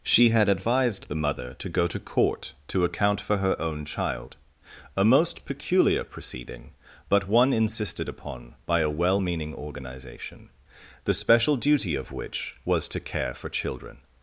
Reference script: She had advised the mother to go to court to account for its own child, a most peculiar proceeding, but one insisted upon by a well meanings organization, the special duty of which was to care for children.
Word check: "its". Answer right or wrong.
wrong